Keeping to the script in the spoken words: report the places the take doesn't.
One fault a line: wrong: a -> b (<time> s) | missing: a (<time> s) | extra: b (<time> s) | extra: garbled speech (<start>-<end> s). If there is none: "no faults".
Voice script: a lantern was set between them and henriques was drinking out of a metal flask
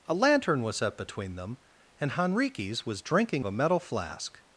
missing: out (3.5 s)